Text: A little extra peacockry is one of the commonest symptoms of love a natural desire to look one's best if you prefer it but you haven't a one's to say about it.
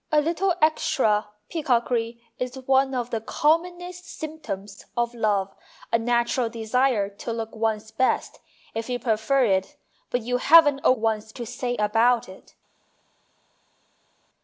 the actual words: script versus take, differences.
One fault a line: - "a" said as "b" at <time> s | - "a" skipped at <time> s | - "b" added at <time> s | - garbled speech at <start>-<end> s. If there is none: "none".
none